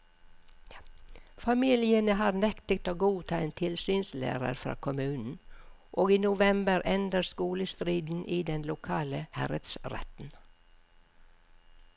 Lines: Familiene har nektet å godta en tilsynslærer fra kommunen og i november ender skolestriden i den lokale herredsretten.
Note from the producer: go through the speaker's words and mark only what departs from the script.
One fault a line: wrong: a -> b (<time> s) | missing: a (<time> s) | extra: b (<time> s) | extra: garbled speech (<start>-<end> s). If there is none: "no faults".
no faults